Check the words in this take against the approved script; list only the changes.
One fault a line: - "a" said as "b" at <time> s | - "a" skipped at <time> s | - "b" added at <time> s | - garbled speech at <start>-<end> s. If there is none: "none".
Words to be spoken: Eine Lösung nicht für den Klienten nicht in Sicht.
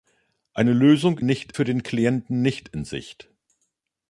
none